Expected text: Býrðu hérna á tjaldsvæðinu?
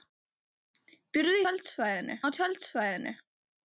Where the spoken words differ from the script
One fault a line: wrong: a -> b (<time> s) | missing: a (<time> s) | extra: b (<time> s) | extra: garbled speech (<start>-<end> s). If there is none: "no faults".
wrong: hérna -> tjaldsvæðinu (1.4 s)